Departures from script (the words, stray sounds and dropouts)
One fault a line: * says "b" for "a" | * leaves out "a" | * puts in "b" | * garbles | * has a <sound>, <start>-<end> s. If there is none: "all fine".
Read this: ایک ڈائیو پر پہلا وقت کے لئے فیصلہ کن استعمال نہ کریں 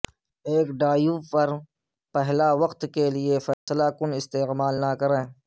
* has a dropout, 3.5-3.7 s